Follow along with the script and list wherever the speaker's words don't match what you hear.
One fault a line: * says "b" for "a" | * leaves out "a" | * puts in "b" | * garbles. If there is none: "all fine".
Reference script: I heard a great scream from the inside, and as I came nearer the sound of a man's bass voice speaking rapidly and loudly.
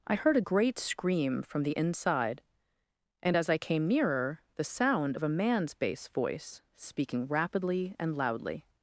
all fine